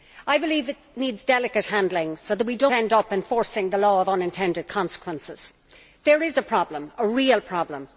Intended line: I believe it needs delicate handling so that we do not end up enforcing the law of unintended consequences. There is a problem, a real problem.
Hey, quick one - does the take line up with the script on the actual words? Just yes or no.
no